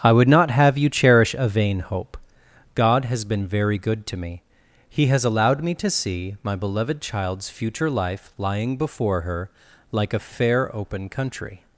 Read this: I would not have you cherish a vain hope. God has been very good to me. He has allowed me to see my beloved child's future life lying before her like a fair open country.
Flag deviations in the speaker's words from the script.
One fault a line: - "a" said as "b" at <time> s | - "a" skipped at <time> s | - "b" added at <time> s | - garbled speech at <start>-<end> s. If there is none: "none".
none